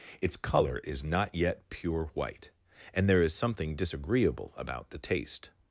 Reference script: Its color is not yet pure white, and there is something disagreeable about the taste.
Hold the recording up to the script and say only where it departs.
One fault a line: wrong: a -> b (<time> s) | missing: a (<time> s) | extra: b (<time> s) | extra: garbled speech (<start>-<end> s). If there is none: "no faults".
no faults